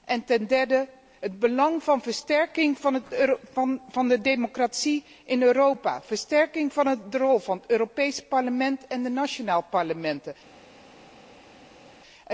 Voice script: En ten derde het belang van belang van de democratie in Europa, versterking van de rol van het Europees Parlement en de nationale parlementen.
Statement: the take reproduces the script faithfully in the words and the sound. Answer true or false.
false